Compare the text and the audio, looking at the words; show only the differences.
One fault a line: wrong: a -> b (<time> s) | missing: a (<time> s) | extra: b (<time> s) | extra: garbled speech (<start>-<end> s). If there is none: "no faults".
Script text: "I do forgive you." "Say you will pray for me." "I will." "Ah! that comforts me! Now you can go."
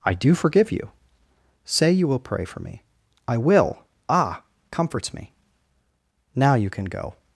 missing: that (4.4 s)